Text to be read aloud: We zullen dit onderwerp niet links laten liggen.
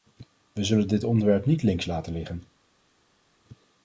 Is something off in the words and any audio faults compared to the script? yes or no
no